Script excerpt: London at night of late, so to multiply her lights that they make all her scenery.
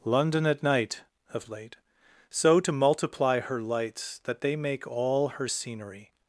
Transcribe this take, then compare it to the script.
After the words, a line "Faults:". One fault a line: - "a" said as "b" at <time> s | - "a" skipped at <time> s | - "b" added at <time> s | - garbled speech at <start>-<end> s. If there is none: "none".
London at night of late, so to multiply her lights that they make all her scenery.
Faults:
none